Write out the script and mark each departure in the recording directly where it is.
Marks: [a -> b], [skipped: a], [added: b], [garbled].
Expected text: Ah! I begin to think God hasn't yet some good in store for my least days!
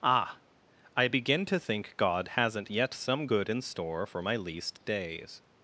Ah! I begin to think God hasn't yet some good in store for my least days!